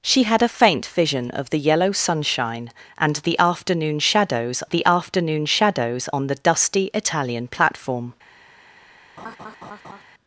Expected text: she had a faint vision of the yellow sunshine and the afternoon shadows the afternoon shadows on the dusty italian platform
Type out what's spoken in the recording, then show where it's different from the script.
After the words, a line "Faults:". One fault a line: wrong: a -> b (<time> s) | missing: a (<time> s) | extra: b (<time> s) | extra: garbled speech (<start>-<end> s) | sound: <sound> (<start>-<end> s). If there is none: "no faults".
she had a faint vision of the yellow sunshine and the afternoon shadows the afternoon shadows on the dusty italian platform
Faults:
sound: laugh (9.2-10.0 s)